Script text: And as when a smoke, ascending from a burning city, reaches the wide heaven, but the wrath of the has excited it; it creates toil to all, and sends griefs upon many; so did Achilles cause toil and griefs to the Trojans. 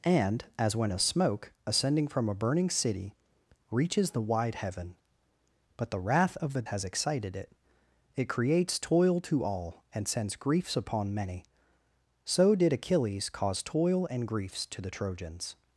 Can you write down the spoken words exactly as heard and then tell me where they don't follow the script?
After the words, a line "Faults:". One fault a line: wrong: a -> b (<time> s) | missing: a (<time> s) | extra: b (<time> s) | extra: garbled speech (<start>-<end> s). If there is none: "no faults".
And as when a smoke, ascending from a burning city, reaches the wide heaven, but the wrath of the has excited it; it creates toil to all, and sends griefs upon many; so did Achilles cause toil and griefs to the Trojans.
Faults:
no faults